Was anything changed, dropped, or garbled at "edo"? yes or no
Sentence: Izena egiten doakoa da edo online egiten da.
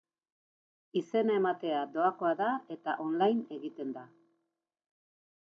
yes